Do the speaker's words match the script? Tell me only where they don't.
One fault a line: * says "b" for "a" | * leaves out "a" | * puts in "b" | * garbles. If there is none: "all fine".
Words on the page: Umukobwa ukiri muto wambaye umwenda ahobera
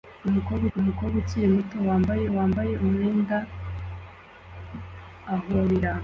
* puts in "umukobwa"
* puts in "wambaye"